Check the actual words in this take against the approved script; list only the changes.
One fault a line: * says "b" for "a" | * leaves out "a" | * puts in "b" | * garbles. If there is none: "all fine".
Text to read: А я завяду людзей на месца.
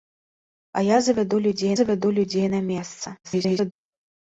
* puts in "завяду людзей"
* garbles